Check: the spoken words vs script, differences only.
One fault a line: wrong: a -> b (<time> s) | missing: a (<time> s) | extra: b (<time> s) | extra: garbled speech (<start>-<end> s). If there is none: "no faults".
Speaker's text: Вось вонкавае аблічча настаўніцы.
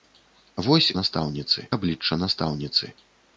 wrong: вонкавае -> настаўніцы (1.0 s)